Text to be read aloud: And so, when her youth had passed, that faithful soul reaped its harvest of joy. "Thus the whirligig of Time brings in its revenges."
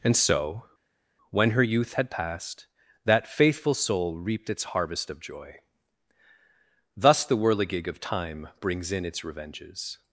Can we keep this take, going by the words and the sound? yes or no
yes